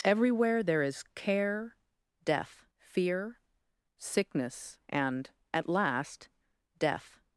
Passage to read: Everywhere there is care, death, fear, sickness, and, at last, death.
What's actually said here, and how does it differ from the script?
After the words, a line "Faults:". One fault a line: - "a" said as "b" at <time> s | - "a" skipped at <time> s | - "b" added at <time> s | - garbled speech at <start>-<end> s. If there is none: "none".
Everywhere there is care, death, fear, sickness, and, at last, death.
Faults:
none